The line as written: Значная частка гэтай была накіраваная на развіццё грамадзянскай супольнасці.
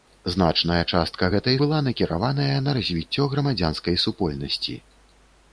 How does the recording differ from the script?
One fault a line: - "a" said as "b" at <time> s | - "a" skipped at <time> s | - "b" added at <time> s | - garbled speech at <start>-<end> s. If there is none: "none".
none